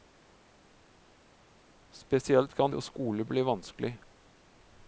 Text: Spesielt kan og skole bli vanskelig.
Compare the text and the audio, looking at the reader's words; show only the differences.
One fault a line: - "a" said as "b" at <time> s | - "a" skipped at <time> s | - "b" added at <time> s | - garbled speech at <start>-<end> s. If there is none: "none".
none